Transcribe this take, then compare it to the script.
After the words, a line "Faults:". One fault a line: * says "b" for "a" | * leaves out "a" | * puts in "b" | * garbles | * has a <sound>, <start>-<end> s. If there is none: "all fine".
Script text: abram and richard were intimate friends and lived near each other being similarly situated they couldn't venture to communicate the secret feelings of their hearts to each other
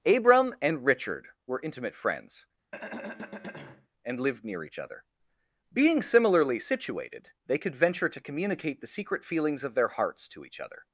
abram and richard were intimate friends and lived near each other being similarly situated they could venture to communicate the secret feelings of their hearts to each other
Faults:
* has a throat clearing, 2.7-3.9 s
* says "could" for "couldn't"